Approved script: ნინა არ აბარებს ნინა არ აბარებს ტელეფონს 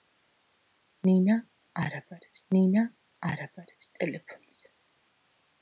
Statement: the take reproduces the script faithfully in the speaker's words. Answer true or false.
true